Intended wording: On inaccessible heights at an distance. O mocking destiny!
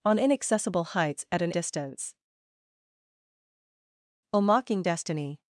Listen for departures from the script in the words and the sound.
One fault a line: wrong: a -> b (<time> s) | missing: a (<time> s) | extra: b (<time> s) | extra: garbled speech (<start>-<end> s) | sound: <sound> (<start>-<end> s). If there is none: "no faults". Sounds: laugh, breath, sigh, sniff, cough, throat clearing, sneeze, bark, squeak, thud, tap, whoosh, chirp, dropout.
no faults